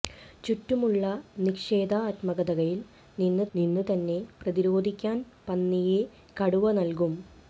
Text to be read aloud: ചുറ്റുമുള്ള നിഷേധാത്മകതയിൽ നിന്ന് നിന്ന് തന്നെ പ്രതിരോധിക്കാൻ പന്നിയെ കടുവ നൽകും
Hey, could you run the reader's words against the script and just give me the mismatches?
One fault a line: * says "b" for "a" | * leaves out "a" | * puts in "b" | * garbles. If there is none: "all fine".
all fine